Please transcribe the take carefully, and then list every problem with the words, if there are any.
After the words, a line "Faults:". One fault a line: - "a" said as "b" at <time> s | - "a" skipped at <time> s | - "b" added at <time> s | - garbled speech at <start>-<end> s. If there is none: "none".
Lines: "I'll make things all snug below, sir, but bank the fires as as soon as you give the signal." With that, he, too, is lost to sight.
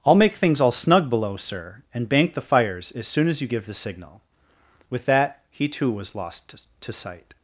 "I'll make things all snug below, sir, and bank the fires as soon as you give the signal." With that, he, too, was lost to sight.
Faults:
- "but" said as "and" at 1.9 s
- "as" skipped at 3.1 s
- "is" said as "was" at 5.9 s